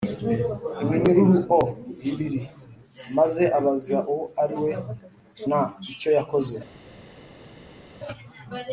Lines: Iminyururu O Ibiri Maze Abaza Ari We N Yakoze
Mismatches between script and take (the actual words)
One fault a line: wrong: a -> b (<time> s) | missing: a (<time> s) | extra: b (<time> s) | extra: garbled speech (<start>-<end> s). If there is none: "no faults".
extra: Uwo (4.1 s)
extra: Icyo (5.9 s)